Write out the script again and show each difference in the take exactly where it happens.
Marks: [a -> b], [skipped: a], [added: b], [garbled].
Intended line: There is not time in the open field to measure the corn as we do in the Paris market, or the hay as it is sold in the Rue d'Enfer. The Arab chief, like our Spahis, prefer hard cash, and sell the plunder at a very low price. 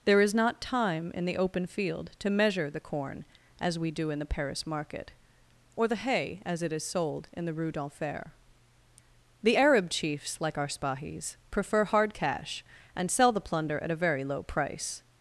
There is not time in the open field to measure the corn as we do in the Paris market, or the hay as it is sold in the Rue d'Enfer. The Arab [chief, -> chiefs] like our Spahis, prefer hard cash, and sell the plunder at a very low price.